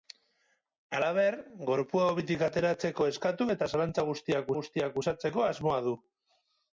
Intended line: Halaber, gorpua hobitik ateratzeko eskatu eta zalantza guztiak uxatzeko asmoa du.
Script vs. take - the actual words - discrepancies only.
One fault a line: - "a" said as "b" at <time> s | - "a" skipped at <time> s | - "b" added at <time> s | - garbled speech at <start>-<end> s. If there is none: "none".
- "guztiak" added at 4.6 s